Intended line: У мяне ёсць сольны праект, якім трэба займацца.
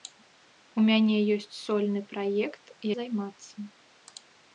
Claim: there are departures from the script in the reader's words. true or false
true